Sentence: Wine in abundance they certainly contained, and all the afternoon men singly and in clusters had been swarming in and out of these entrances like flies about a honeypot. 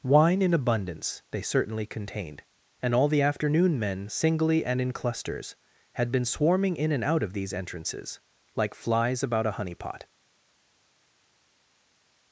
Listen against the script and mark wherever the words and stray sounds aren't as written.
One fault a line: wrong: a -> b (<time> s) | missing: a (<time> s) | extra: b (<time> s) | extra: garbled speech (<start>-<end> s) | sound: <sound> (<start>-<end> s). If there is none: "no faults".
no faults